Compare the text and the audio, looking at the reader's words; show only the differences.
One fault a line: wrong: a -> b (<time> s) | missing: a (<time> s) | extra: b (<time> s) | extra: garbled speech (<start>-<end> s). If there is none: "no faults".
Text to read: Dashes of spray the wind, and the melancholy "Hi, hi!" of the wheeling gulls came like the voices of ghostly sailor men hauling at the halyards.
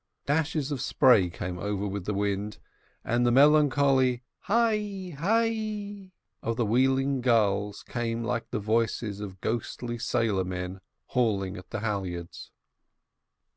extra: came over with (1.3 s)